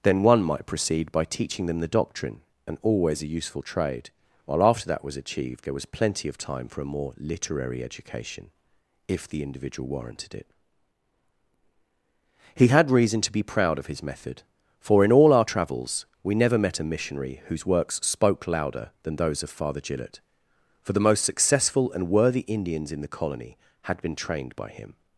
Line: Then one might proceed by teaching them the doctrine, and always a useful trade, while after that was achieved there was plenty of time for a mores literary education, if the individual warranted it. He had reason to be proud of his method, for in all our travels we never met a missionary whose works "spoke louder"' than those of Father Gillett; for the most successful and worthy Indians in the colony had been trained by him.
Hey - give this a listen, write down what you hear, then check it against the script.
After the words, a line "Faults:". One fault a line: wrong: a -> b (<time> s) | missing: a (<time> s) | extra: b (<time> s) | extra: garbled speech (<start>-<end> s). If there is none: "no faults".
Then one might proceed by teaching them the doctrine, and always a useful trade, while after that was achieved there was plenty of time for a more literary education, if the individual warranted it. He had reason to be proud of his method, for in all our travels we never met a missionary whose works "spoke louder"' than those of Father Gillett; for the most successful and worthy Indians in the colony had been trained by him.
Faults:
wrong: mores -> more (6.9 s)